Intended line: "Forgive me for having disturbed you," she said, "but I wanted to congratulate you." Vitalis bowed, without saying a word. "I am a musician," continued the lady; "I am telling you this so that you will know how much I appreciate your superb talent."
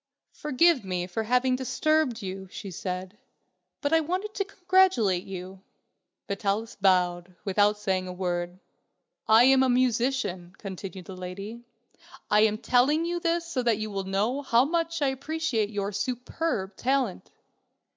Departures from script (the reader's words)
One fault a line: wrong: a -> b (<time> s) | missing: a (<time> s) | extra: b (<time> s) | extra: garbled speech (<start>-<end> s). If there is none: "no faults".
no faults